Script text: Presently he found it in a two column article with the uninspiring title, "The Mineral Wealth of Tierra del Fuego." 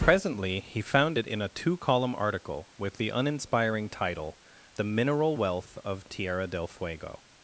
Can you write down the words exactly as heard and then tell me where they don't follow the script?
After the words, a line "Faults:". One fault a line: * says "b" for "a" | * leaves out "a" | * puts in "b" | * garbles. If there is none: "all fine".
Presently he found it in a two column article with the uninspiring title, "The Mineral Wealth of Tierra del Fuego."
Faults:
all fine